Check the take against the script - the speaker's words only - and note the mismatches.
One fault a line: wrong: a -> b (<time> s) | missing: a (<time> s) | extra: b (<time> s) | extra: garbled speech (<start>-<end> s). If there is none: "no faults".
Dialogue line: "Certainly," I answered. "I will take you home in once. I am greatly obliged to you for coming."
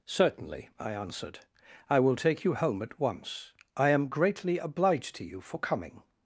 wrong: in -> at (2.8 s)